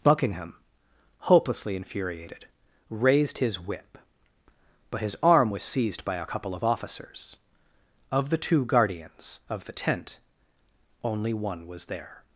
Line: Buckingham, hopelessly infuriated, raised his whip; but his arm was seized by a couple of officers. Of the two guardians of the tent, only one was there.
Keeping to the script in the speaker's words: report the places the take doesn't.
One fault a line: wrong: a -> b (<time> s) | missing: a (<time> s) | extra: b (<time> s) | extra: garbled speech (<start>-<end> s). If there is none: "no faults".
no faults